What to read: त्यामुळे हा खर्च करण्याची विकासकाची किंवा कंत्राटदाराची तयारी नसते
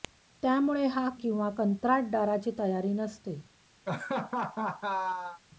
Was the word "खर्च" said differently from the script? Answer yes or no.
yes